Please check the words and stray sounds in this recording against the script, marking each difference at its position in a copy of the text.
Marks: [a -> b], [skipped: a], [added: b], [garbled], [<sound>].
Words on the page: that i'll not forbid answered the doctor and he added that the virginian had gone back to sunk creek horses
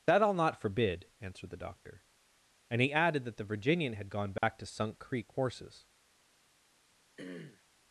that i'll not forbid answered the doctor and he added that the virginian had gone back [dropout] to sunk creek horses [throat clearing]